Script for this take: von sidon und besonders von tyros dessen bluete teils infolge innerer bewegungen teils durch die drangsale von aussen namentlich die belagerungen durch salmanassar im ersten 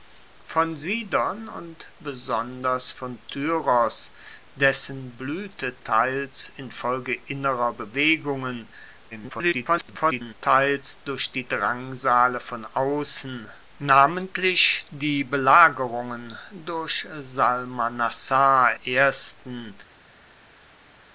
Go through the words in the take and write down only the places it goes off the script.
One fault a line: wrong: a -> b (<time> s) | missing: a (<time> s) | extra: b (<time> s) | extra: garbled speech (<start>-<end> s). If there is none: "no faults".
extra: garbled speech (9.1-10.3 s)
missing: im (18.8 s)